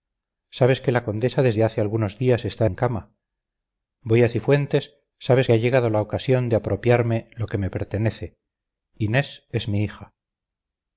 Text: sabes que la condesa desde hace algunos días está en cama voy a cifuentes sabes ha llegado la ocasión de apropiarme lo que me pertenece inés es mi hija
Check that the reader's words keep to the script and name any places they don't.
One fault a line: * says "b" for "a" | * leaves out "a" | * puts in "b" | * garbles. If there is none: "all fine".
all fine